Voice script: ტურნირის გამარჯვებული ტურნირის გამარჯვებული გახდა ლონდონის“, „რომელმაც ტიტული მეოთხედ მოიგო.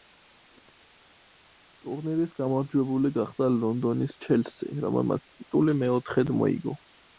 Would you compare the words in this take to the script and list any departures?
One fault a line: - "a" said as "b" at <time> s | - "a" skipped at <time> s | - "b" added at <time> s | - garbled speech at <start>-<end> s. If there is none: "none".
- "ტურნირის გამარჯვებული" skipped at 3.1 s
- "ჩელსი" added at 4.3 s